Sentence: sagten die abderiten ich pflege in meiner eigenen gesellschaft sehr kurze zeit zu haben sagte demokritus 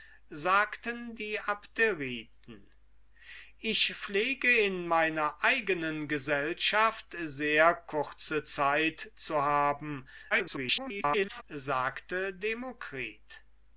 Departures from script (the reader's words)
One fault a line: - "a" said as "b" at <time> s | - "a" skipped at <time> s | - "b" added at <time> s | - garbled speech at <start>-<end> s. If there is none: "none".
- garbled speech at 10.3-11.4 s